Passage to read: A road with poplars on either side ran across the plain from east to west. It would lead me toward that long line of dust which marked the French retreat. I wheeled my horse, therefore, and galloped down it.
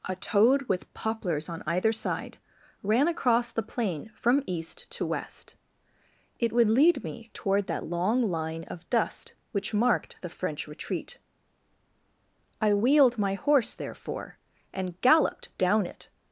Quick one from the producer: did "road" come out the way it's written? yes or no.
no